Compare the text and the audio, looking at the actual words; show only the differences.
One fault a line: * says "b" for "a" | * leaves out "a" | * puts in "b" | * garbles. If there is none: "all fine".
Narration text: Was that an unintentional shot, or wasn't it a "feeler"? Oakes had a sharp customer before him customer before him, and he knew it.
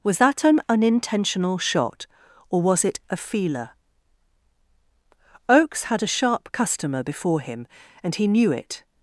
* says "was" for "wasn't"
* leaves out "customer before him"